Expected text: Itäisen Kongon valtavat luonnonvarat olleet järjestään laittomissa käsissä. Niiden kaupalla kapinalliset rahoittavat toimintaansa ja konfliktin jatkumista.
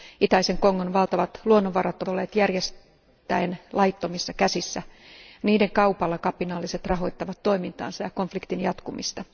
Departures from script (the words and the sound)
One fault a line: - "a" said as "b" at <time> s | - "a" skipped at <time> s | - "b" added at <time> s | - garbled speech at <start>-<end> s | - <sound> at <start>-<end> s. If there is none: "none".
none